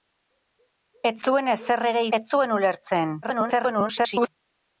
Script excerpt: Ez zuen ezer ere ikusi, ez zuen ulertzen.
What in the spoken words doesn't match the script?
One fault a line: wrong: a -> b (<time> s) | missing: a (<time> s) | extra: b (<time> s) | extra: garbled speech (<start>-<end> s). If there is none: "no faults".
missing: ikusi (2.1 s)
extra: garbled speech (3.2-4.3 s)